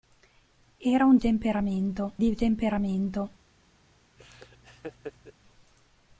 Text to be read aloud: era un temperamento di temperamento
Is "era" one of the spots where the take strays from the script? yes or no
no